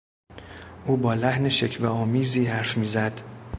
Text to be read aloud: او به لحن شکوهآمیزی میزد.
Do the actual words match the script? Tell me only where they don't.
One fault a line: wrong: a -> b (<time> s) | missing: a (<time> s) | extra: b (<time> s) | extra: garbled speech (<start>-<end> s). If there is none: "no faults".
wrong: به -> با (1.0 s)
extra: حرف (2.4 s)